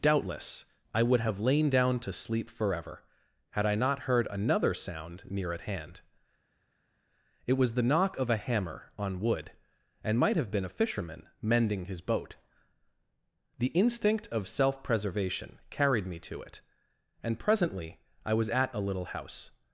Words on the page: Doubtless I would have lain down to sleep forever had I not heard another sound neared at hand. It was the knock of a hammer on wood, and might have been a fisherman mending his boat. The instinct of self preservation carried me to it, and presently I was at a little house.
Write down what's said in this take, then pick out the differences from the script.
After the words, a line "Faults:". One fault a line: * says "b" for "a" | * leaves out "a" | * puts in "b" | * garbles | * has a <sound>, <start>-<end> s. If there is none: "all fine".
Doubtless I would have lain down to sleep forever had I not heard another sound near at hand. It was the knock of a hammer on wood, and might have been a fisherman mending his boat. The instinct of self preservation carried me to it, and presently I was at a little house.
Faults:
* says "near" for "neared"